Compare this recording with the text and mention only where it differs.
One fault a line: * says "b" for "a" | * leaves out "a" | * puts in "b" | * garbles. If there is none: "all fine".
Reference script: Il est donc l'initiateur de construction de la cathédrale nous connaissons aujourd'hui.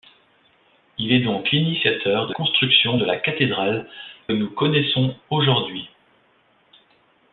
all fine